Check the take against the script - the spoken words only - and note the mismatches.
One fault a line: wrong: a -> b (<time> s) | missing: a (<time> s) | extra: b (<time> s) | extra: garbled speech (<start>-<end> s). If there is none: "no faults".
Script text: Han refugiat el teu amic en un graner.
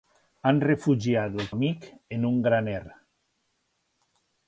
missing: teu (1.5 s)